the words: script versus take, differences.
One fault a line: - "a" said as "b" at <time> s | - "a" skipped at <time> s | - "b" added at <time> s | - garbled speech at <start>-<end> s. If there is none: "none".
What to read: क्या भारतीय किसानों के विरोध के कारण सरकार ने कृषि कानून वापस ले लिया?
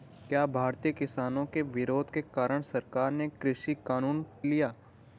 - "वापस ले" skipped at 4.2 s